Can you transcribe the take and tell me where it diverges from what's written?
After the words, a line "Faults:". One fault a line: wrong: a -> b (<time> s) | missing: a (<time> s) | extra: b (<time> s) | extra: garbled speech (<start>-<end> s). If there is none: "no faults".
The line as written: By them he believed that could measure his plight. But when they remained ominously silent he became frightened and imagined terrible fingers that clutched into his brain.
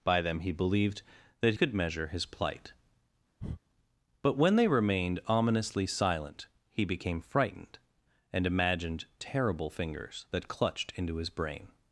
By them he believed that could measure his plight. But when they remained ominously silent he became frightened and imagined terrible fingers that clutched into his brain.
Faults:
no faults